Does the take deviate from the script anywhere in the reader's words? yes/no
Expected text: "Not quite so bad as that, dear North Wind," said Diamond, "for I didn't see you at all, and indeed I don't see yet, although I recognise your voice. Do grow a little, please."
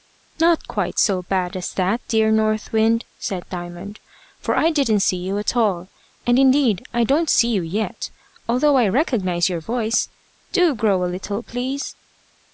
yes